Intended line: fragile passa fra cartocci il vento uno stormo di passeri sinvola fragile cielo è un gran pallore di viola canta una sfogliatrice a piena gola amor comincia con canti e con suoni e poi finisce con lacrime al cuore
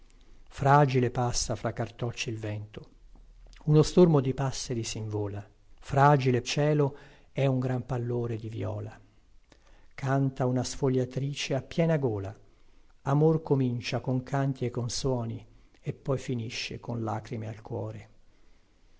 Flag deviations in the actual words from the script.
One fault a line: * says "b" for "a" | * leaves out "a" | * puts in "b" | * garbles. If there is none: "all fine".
all fine